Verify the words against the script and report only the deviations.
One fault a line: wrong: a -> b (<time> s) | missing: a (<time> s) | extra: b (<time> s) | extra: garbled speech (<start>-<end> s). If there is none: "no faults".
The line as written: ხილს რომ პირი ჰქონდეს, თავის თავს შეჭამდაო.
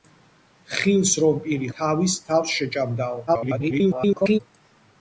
missing: ჰქონდეს (1.7 s)
extra: garbled speech (3.3-4.4 s)